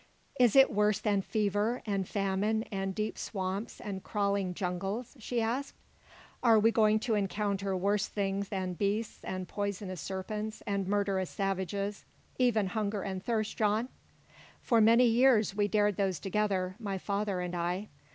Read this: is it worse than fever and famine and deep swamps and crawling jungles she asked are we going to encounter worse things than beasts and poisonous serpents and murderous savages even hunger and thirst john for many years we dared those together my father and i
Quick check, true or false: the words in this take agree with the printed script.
true